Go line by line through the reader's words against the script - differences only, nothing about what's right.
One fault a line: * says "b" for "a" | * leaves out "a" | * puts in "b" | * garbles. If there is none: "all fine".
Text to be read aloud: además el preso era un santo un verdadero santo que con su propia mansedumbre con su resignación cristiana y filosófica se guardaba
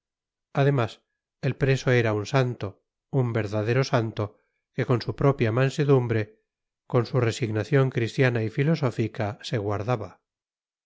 all fine